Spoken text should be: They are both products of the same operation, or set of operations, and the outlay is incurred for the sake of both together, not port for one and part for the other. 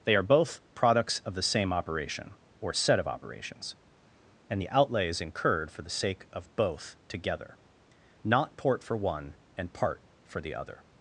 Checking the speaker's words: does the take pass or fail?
pass